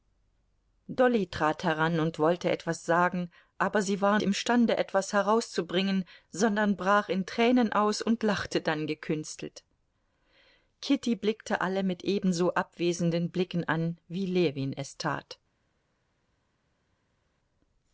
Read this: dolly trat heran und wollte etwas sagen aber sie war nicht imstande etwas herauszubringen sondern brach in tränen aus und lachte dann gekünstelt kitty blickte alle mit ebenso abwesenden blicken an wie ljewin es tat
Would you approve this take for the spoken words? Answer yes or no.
no